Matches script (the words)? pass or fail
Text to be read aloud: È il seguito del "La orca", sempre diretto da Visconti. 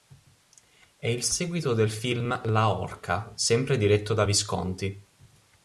fail